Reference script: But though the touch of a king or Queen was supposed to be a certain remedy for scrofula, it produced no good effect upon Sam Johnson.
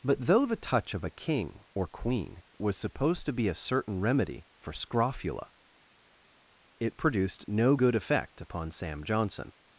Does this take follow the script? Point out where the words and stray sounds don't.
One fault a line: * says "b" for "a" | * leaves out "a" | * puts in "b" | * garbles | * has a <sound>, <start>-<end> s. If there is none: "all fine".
all fine